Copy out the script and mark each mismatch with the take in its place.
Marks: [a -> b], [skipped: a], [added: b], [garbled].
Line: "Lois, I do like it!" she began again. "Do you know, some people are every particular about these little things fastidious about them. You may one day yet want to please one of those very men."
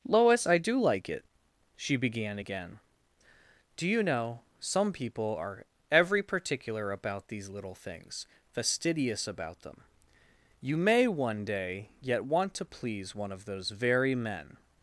"Lois, I do like it!" she began again. "Do you know, some people are every particular about these little things fastidious about them. You may one day yet want to please one of those very men."